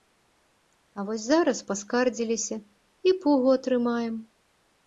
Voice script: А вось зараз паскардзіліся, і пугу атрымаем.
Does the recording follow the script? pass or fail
pass